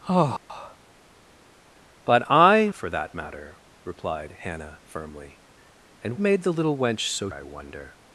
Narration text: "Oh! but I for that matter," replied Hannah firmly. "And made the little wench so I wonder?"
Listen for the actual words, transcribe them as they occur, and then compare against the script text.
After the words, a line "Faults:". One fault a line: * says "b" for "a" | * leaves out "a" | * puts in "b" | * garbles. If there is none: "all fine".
"Oh! but I for that matter," replied Hannah firmly. "And made the little wench so I wonder?"
Faults:
all fine